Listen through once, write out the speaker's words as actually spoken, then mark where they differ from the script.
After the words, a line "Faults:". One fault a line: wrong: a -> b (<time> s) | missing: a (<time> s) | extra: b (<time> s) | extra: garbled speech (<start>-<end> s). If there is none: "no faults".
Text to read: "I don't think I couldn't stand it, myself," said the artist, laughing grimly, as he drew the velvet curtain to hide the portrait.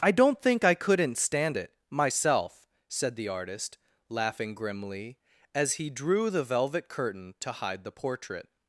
"I don't think I couldn't stand it, myself," said the artist, laughing grimly, as he drew the velvet curtain to hide the portrait.
Faults:
no faults